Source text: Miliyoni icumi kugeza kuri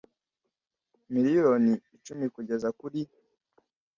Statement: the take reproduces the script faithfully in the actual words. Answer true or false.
true